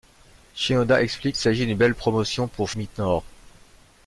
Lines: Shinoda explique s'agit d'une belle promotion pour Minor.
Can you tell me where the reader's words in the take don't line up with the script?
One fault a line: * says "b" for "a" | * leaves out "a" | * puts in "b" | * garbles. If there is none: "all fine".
all fine